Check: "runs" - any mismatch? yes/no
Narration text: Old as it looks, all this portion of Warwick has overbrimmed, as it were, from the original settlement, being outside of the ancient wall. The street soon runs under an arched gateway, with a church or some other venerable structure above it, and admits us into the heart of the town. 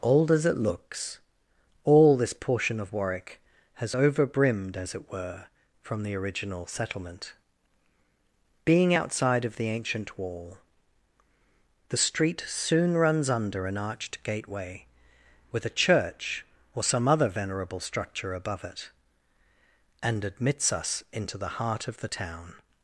no